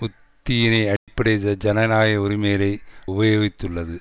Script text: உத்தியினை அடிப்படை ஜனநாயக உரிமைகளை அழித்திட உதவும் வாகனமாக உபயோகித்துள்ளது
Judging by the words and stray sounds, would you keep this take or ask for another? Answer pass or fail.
fail